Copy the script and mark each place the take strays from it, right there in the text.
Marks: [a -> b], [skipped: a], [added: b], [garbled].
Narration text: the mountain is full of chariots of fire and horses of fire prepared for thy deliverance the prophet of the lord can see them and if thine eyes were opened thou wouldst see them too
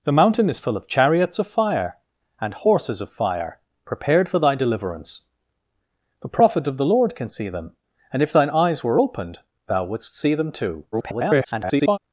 the mountain is full of chariots of fire and horses of fire prepared for thy deliverance the prophet of the lord can see them and if thine eyes were opened thou wouldst see them too [garbled]